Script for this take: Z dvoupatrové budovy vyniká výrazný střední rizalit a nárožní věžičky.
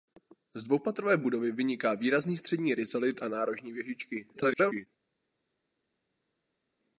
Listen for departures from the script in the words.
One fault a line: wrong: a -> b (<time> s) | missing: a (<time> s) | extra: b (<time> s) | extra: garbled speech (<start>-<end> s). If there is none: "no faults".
extra: garbled speech (4.3-4.9 s)